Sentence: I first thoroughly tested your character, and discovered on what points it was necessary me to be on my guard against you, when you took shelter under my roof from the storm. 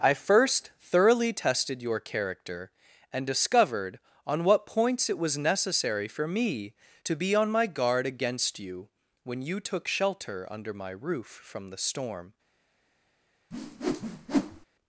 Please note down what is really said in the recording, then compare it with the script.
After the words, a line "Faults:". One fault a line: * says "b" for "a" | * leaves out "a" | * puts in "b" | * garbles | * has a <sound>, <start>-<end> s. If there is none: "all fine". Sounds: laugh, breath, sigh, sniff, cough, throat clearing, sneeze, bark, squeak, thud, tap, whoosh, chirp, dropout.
I first thoroughly tested your character, and discovered on what points it was necessary for me to be on my guard against you, when you took shelter under my roof from the storm.
Faults:
* puts in "for"
* has a whoosh, 13.5-14.7 s